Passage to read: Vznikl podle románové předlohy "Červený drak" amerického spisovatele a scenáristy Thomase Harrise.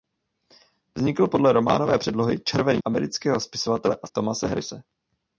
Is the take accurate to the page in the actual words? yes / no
no